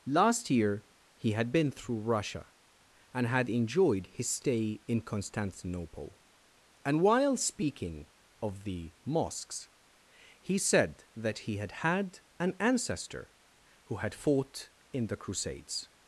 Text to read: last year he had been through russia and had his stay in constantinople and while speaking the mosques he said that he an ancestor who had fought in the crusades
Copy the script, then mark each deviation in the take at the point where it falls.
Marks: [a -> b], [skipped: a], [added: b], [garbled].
last year he had been through russia and had [added: enjoyed] his stay in constantinople and while speaking [added: of] the mosques he said that he [added: had had] an ancestor who had fought in the crusades